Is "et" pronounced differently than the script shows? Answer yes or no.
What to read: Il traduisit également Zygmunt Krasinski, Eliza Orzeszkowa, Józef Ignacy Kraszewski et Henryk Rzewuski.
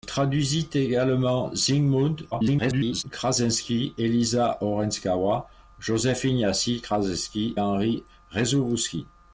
yes